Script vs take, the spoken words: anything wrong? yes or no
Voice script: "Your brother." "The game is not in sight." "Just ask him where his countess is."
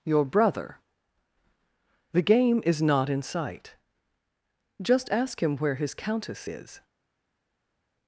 no